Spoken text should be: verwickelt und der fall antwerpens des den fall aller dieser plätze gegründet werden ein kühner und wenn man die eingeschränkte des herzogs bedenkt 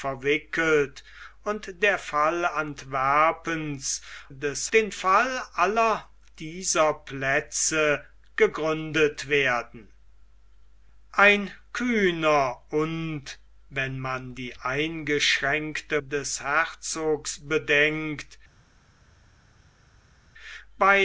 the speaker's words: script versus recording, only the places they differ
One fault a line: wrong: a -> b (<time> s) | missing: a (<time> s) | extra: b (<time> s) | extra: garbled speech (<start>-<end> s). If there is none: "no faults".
no faults